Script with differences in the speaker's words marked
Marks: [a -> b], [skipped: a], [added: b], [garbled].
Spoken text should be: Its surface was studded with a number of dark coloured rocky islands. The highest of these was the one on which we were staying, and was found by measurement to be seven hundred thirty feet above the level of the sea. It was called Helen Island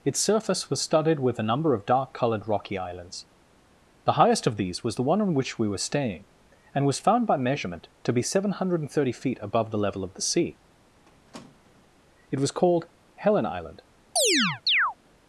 Its surface was studded with a number of dark coloured rocky islands. The highest of these was the one on which we were staying, and was found by measurement to be seven hundred thirty feet above the level of the sea. It was called Helen Island